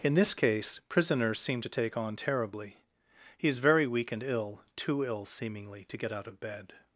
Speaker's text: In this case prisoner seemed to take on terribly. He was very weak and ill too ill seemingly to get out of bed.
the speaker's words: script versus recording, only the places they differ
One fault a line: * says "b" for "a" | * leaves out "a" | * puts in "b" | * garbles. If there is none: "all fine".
* says "is" for "was"